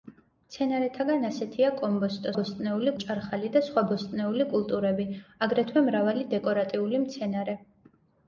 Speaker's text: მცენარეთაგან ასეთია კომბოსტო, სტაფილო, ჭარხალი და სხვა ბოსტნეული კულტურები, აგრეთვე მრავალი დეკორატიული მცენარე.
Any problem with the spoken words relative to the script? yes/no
yes